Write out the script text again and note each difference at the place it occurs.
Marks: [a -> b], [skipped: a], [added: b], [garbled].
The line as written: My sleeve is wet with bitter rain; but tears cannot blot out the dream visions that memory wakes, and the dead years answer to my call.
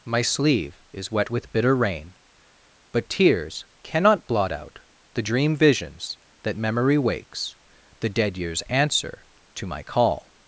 My sleeve is wet with bitter rain; but tears cannot blot out the dream visions that memory wakes, [skipped: and] the dead years answer to my call.